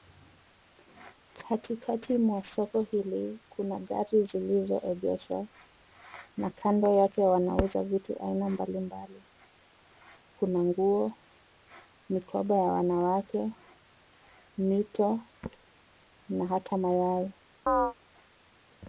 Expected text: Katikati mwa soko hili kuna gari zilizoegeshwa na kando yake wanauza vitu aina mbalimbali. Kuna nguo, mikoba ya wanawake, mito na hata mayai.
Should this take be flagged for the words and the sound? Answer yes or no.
yes